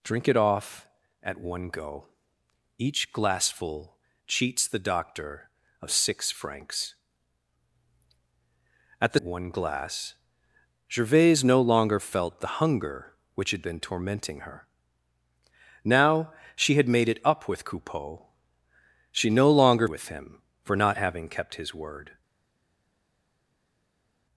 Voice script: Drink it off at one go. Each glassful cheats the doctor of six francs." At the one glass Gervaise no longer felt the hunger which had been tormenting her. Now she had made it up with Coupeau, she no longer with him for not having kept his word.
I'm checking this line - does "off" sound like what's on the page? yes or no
yes